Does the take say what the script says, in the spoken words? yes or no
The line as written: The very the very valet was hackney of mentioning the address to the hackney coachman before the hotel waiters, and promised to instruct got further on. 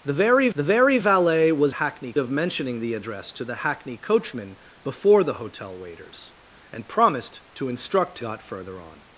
yes